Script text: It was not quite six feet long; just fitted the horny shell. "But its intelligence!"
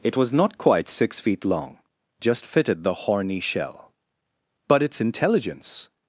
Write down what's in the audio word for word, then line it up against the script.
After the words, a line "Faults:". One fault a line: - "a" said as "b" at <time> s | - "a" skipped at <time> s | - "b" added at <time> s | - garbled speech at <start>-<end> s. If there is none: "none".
It was not quite six feet long; just fitted the horny shell. "But its intelligence!"
Faults:
none